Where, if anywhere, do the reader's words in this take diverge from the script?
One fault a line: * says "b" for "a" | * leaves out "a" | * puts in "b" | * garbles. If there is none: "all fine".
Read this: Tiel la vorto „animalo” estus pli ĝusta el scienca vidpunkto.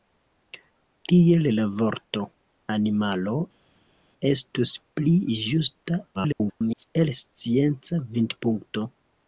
* garbles